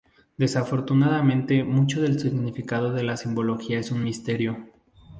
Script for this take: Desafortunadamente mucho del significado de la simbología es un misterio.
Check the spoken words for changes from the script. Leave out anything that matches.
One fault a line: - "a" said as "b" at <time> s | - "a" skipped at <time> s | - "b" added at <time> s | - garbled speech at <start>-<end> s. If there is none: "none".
none